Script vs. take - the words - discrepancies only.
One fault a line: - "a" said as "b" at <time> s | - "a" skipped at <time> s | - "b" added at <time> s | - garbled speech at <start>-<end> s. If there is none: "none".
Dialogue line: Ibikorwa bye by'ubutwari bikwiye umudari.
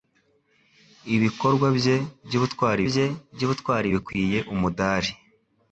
- "bye by'ubutwari" added at 2.9 s